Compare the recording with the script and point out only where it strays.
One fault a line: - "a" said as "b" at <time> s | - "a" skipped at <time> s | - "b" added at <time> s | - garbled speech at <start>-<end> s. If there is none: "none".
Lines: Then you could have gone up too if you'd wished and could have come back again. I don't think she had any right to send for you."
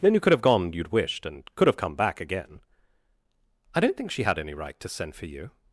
- "up too if" skipped at 0.7 s